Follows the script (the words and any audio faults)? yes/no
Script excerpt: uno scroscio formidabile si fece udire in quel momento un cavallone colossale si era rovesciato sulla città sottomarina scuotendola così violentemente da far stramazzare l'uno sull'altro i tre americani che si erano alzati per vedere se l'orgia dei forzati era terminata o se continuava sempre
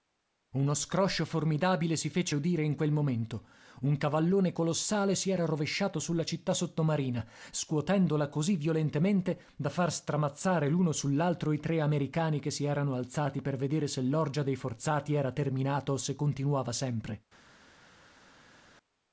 yes